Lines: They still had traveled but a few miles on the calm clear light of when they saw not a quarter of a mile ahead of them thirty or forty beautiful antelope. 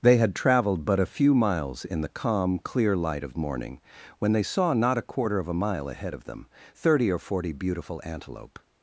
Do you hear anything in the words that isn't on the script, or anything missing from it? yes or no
yes